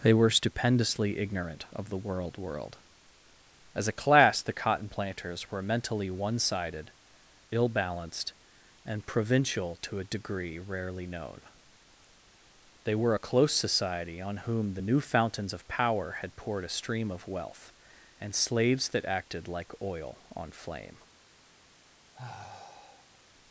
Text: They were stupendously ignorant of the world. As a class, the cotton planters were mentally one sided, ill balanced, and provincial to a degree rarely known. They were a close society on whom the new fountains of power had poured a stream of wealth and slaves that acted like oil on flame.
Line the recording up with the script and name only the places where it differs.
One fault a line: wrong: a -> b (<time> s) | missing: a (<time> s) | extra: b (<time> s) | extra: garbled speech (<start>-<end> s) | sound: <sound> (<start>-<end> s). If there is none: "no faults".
extra: world (2.4 s)
sound: sigh (22.1-23.2 s)